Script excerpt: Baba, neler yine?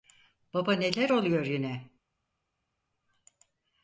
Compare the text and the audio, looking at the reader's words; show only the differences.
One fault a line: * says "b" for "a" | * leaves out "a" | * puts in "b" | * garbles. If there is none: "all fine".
* puts in "oluyor"